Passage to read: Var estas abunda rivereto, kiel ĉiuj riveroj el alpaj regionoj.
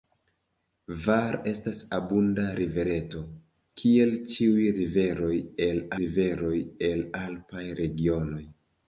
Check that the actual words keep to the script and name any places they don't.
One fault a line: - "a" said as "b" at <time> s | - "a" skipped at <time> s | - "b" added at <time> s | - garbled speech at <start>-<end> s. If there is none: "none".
- "riveroj el" added at 6.0 s